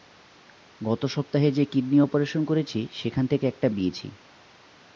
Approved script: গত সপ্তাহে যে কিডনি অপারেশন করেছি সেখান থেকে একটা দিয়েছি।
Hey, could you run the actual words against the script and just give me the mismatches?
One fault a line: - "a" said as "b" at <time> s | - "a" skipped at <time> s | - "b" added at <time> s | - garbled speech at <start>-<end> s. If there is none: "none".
none